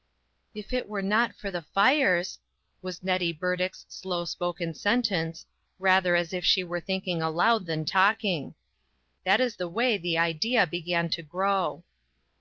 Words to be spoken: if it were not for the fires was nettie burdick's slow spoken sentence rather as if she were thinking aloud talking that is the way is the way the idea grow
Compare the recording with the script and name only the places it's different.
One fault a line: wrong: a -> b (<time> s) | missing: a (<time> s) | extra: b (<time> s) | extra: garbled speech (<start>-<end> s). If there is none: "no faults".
extra: than (7.7 s)
missing: is (10.0 s)
wrong: way the idea -> idea began to (10.2 s)